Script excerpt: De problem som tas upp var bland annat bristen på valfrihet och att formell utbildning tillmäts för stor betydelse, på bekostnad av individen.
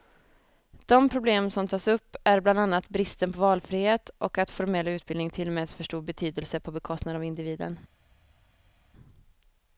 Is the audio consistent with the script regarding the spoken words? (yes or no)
no